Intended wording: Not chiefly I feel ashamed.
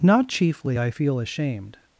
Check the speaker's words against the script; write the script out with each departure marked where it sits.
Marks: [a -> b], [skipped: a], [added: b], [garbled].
Not chiefly I feel ashamed.